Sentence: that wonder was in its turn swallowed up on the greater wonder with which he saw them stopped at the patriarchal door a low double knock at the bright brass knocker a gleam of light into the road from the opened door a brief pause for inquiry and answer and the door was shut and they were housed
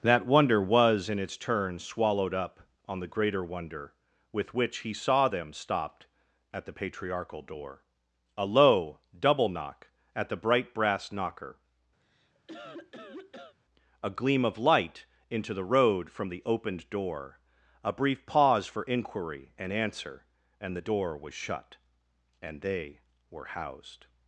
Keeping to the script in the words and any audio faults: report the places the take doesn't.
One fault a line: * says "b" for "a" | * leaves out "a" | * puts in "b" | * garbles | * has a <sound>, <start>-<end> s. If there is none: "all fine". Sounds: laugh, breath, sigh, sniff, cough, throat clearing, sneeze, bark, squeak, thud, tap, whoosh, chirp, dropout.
* has a cough, 12.0-13.6 s